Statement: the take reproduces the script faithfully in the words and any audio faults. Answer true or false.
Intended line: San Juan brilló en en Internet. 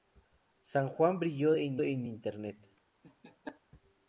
false